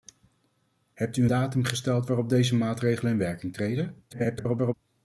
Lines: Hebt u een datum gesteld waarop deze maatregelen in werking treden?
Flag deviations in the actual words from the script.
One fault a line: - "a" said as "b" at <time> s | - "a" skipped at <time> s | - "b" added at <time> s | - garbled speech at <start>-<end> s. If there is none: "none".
- "een" skipped at 1.2 s
- garbled speech at 4.1-4.7 s